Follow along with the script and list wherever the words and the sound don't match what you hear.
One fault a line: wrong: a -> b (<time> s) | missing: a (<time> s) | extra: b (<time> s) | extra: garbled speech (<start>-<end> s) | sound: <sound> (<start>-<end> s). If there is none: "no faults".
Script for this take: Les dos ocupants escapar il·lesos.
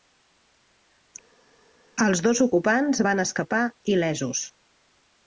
wrong: Les -> Els (2.1 s)
extra: van (3.1 s)